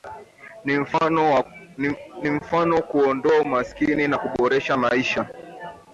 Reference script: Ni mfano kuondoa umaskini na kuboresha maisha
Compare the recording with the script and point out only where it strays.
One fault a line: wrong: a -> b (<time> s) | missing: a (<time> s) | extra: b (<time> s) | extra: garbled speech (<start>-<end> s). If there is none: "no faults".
no faults